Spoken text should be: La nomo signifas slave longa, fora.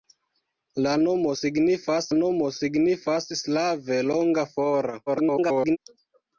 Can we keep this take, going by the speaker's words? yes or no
no